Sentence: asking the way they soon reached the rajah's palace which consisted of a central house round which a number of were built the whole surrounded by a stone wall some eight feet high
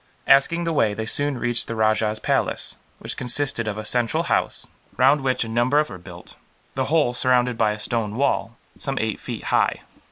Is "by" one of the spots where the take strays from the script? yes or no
no